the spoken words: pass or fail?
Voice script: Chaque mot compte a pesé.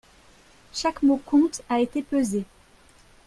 fail